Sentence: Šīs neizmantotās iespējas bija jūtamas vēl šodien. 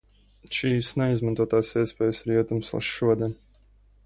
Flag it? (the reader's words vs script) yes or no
yes